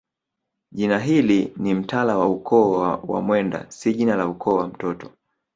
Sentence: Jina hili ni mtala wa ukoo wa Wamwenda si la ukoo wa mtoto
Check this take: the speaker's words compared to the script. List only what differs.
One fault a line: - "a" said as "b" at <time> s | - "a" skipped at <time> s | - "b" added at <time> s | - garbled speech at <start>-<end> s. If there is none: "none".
- "jina" added at 3.9 s